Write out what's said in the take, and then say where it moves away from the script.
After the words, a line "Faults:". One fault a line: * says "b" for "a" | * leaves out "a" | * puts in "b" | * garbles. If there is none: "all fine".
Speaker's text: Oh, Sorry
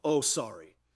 Oh, Sorry
Faults:
all fine